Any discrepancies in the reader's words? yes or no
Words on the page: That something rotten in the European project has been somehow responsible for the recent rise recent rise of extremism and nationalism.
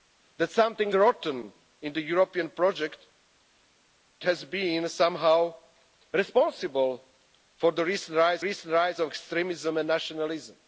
no